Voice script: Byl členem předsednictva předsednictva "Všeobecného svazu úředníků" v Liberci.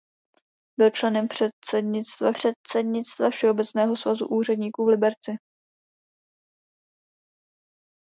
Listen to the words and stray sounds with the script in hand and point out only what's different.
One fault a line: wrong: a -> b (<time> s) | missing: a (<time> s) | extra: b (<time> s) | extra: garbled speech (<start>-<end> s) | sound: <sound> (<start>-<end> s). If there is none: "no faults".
no faults